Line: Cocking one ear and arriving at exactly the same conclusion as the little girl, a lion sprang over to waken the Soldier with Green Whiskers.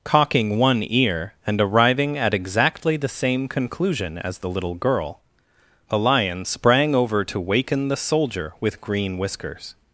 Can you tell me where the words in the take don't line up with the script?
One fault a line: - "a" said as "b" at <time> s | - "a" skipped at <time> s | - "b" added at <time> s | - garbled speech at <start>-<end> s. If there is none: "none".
none